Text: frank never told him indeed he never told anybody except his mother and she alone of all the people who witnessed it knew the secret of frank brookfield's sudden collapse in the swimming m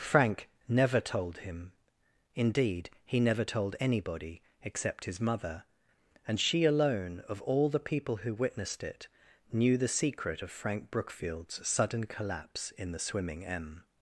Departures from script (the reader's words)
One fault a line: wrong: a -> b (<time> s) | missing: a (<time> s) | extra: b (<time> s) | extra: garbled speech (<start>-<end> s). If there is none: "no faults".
no faults